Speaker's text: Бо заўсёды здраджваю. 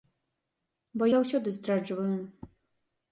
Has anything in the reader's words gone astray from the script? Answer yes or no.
no